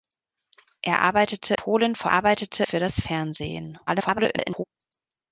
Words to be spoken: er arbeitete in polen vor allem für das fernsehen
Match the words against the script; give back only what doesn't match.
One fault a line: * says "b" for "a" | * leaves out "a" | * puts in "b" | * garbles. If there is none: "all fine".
* leaves out "in"
* says "arbeitete" for "allem"
* garbles